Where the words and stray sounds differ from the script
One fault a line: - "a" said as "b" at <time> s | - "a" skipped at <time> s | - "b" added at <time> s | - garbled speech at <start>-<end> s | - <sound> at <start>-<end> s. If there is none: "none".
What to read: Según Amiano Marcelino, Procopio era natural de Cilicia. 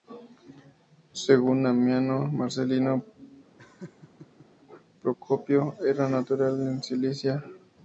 - laugh at 3.6-4.5 s